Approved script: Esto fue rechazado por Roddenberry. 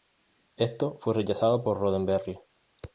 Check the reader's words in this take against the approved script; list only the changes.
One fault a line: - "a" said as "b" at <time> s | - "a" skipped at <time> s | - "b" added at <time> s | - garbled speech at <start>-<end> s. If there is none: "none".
none